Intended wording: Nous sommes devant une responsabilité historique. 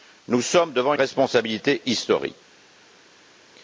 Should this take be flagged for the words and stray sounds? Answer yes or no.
yes